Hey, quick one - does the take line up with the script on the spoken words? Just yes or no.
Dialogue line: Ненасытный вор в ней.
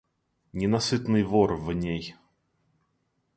yes